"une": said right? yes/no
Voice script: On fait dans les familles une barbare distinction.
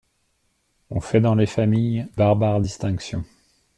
no